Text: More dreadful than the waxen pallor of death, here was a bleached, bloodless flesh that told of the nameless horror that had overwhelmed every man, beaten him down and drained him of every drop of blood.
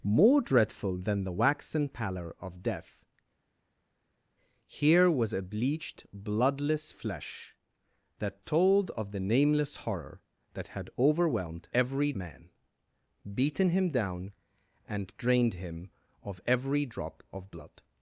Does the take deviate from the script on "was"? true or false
false